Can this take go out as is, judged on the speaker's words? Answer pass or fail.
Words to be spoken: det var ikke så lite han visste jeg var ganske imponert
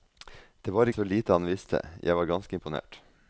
fail